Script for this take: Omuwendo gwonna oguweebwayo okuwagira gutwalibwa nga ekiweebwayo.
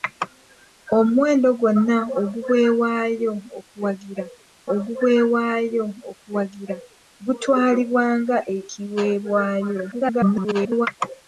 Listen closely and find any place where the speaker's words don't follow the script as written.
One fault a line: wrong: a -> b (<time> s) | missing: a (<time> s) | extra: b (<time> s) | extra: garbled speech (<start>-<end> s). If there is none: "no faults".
extra: oguweebwayo okuwagira (4.7 s)
extra: garbled speech (9.9-10.9 s)